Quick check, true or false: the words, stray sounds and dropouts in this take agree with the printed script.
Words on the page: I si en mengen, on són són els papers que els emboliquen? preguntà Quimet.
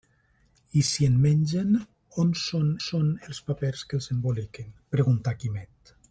true